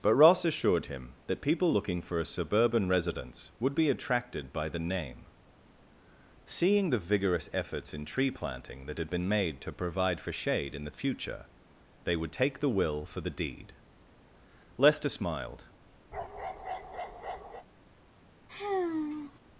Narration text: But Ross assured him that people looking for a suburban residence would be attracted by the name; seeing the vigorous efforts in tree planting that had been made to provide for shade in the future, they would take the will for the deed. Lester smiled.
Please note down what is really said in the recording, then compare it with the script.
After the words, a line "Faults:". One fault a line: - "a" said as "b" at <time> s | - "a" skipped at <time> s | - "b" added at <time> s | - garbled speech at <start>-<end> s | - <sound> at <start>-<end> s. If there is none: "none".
But Ross assured him that people looking for a suburban residence would be attracted by the name; seeing the vigorous efforts in tree planting that had been made to provide for shade in the future, they would take the will for the deed. Lester smiled.
Faults:
- bark at 16.1-17.7 s
- sigh at 18.5-19.4 s